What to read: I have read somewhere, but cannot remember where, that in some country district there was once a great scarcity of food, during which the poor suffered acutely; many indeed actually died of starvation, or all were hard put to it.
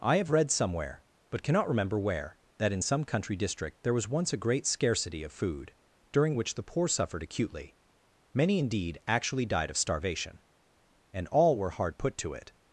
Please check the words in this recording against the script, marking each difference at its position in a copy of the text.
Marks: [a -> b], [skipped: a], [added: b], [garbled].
I have read somewhere, but cannot remember where, that in some country district there was once a great scarcity of food, during which the poor suffered acutely; many indeed actually died of starvation, [or -> and] all were hard put to it.